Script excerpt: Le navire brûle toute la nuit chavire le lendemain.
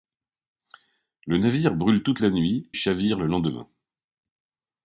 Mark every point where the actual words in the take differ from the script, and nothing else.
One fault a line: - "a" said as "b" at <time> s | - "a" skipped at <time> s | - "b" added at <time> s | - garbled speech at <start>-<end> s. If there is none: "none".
none